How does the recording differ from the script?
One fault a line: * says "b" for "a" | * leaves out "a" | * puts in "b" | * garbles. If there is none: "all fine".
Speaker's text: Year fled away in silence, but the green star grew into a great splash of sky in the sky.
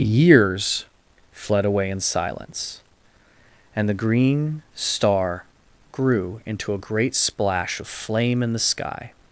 * says "Years" for "Year"
* says "and" for "but"
* says "flame" for "sky"